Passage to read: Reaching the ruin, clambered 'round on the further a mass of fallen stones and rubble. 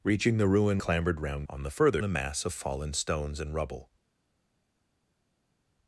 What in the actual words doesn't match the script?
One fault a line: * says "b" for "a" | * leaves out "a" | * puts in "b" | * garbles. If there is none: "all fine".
all fine